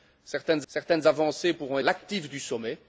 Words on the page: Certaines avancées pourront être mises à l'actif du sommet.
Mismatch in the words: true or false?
true